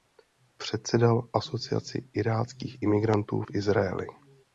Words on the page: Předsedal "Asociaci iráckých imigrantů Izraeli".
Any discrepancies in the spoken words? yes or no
yes